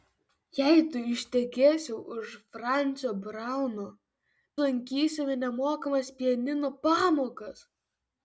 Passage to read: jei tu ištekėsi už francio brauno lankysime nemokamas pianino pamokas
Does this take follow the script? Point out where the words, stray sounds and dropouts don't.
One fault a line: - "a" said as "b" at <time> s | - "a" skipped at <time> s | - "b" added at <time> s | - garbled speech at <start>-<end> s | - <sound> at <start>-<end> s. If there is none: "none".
none